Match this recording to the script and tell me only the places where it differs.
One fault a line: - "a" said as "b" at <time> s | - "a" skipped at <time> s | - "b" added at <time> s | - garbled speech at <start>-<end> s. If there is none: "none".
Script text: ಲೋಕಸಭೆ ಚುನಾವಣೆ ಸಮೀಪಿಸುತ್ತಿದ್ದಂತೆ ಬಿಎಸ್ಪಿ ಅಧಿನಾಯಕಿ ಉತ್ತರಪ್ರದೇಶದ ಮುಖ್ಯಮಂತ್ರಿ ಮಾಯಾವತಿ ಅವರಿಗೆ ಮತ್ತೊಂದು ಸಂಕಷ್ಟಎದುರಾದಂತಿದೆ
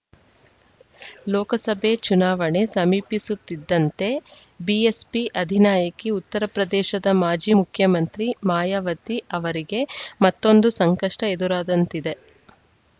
- "ಮಾಜಿ" added at 7.2 s